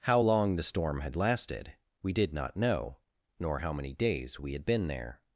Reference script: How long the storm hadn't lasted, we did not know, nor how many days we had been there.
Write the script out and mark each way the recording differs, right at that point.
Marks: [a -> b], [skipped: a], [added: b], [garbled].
How long the storm [hadn't -> had] lasted, we did not know, nor how many days we had been there.